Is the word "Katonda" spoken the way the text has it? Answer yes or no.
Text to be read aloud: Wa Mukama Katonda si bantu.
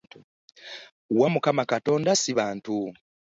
yes